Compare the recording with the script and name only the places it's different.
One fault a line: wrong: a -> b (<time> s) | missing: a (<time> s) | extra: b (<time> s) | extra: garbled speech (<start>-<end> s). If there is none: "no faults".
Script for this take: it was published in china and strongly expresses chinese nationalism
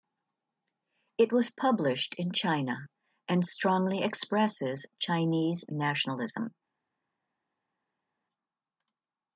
no faults